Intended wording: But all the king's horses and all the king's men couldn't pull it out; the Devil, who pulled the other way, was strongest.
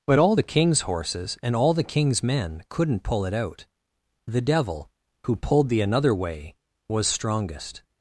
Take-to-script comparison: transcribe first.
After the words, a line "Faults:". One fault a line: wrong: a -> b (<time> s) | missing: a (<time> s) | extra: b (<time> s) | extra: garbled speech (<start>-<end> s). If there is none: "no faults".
But all the king's horses and all the king's men couldn't pull it out; the Devil, who pulled the another way, was strongest.
Faults:
wrong: other -> another (5.8 s)